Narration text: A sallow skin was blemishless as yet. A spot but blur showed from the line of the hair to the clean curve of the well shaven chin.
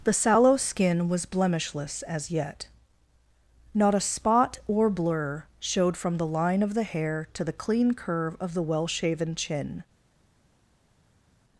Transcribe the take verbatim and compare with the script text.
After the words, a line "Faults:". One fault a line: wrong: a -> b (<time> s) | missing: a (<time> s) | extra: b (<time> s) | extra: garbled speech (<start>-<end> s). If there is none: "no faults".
The sallow skin was blemishless as yet. Not a spot or blur showed from the line of the hair to the clean curve of the well shaven chin.
Faults:
wrong: A -> The (0.0 s)
extra: Not (3.7 s)
wrong: but -> or (4.7 s)